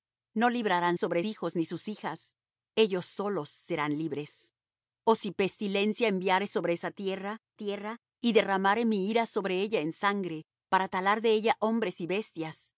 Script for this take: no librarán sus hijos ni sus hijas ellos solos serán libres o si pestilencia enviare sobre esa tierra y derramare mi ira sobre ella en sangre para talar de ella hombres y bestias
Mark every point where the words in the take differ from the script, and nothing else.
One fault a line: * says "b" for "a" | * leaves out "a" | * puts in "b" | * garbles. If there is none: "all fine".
* says "sobre" for "sus"
* puts in "tierra"